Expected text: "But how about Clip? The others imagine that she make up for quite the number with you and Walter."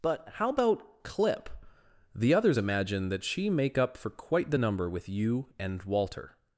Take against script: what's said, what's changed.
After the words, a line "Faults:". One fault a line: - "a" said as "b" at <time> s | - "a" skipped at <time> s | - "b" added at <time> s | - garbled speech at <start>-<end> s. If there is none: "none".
"But how about Clip? The others imagine that she make up for quite the number with you and Walter."
Faults:
none